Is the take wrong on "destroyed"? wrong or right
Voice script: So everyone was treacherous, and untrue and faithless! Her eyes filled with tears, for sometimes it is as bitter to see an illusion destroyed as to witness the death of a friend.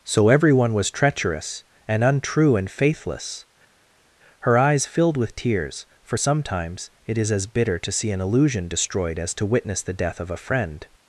right